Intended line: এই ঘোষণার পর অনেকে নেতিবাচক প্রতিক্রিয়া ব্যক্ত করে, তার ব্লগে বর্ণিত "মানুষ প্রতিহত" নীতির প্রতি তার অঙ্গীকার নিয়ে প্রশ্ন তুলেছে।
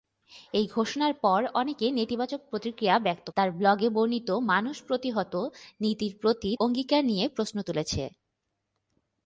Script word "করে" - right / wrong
wrong